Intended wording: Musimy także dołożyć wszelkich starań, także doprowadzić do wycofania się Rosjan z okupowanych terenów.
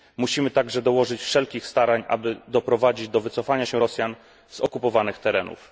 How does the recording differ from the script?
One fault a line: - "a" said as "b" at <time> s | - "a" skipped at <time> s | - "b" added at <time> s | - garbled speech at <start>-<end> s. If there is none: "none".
- "także" said as "aby" at 2.1 s